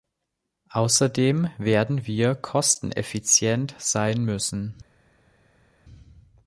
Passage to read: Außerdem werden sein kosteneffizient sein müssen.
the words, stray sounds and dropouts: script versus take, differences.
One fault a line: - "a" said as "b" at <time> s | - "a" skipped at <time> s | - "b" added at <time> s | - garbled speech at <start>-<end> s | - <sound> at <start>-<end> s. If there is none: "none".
- "sein" said as "wir" at 2.1 s